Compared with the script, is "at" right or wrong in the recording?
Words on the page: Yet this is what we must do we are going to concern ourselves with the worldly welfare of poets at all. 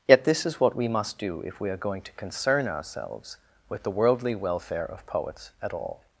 right